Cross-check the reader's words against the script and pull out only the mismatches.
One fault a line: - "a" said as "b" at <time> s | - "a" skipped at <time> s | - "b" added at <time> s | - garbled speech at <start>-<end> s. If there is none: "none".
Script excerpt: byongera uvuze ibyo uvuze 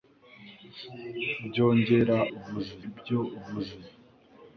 none